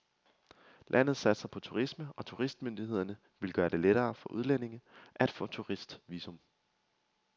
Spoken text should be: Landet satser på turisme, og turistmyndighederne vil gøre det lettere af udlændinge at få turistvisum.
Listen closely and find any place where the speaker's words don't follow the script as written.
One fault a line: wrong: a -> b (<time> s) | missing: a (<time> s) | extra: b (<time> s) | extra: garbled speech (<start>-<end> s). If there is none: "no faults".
wrong: af -> for (4.2 s)